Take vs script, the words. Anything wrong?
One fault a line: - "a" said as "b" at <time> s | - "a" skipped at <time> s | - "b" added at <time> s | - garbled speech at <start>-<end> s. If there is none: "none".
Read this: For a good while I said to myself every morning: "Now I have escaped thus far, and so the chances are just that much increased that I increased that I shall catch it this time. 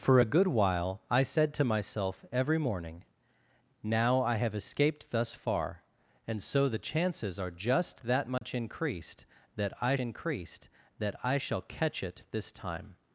none